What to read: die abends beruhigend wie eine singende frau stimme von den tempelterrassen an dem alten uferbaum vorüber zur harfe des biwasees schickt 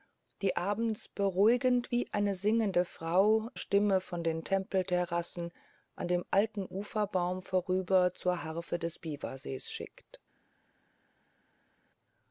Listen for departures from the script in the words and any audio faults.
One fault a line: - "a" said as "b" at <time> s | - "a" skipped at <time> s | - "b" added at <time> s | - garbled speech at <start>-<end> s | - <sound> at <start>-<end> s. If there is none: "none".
none